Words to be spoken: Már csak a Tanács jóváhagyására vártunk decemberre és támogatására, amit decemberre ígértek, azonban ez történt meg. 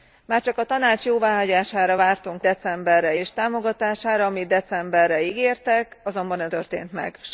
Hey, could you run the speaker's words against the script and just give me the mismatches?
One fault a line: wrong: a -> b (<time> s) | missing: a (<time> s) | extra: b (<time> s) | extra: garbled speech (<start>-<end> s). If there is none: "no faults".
no faults